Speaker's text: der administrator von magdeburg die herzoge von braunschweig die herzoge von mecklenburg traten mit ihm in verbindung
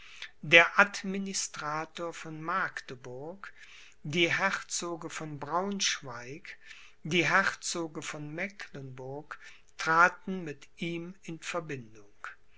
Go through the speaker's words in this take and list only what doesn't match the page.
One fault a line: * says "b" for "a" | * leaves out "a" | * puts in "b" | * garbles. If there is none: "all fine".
all fine